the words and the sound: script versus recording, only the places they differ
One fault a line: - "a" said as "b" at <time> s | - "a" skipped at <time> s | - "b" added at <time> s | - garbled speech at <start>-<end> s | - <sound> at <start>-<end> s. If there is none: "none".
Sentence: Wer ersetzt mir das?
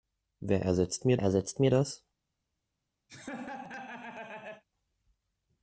- "ersetzt mir" added at 1.2 s
- laugh at 3.1-4.6 s